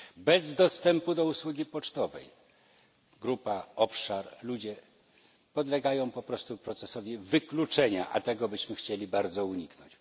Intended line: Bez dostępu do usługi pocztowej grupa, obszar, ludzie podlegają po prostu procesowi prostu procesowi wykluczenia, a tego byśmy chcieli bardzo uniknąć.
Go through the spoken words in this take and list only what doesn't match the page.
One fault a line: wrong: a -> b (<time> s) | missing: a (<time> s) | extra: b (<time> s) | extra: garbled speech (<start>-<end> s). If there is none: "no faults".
missing: prostu procesowi (7.2 s)